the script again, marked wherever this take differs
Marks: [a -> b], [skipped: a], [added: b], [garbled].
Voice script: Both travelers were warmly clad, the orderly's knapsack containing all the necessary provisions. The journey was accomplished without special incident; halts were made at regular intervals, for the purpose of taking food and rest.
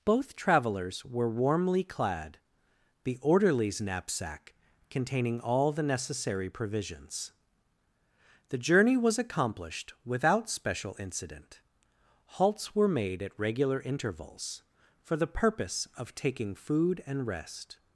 Both travelers were warmly clad, the orderly's knapsack containing all the necessary provisions. The journey was accomplished without special incident; halts were made at regular intervals, for the purpose of taking food and rest.